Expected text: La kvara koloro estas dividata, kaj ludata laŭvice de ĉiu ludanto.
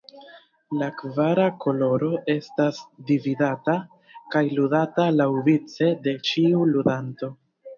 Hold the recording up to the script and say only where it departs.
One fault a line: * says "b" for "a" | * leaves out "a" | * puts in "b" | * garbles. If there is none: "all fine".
all fine